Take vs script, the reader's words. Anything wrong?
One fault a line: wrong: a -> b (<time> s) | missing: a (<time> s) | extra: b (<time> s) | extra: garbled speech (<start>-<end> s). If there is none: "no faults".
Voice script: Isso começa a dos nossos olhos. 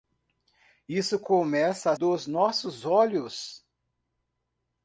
no faults